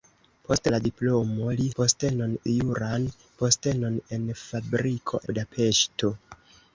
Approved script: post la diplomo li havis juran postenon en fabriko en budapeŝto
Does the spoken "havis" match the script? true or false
false